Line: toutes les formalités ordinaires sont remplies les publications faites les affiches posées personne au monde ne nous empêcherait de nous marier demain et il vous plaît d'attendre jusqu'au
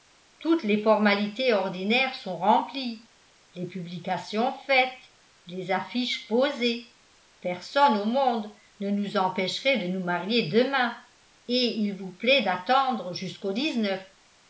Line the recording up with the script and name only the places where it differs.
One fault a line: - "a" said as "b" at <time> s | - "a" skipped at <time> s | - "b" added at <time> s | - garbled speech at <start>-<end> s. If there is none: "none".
none